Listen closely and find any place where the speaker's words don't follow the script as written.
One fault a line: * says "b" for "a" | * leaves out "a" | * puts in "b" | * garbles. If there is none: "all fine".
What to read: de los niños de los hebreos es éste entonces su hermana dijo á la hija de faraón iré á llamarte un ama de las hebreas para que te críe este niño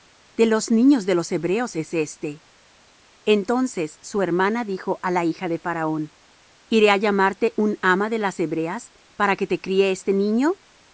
all fine